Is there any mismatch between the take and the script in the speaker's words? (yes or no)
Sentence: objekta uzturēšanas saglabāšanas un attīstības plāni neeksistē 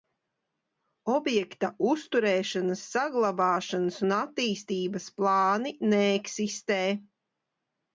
no